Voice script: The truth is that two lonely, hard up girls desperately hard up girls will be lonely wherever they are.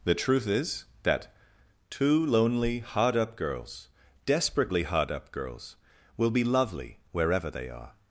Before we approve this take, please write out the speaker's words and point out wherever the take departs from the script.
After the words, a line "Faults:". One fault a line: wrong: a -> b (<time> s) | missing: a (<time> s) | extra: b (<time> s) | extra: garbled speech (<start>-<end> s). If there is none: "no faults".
The truth is that two lonely, hard up girls desperately hard up girls will be lovely wherever they are.
Faults:
wrong: lonely -> lovely (6.4 s)